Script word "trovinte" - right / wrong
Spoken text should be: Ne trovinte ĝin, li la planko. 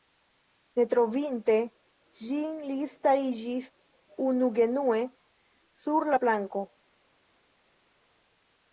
right